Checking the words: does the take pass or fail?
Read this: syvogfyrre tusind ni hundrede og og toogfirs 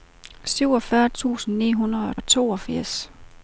pass